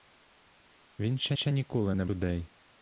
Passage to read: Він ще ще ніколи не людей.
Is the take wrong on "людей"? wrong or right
right